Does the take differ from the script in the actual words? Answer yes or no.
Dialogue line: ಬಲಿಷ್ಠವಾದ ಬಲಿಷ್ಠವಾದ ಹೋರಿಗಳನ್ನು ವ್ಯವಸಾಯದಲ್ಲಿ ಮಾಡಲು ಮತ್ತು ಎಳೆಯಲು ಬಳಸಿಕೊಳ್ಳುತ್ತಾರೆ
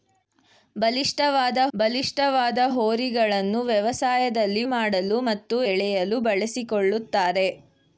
no